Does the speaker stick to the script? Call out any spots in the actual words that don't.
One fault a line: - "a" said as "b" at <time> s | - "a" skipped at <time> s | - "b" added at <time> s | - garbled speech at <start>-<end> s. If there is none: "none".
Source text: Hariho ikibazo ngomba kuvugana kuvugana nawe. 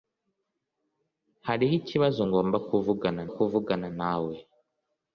none